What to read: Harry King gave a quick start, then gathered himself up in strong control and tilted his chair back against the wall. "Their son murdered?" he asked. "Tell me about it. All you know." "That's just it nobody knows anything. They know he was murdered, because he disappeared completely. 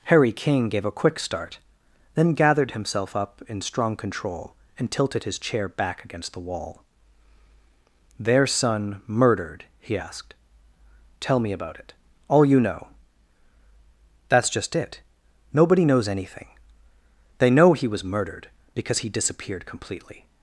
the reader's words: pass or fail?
pass